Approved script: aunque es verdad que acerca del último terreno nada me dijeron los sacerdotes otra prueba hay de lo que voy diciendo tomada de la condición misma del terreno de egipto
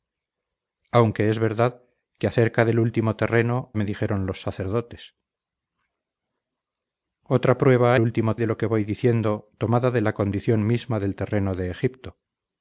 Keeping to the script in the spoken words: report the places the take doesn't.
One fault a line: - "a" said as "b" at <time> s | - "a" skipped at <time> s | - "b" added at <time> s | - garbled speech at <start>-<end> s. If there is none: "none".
- "nada" skipped at 3.8 s
- "hay" said as "último" at 8.0 s